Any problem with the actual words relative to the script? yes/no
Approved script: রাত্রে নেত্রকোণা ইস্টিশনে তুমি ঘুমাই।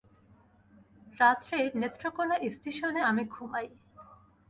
yes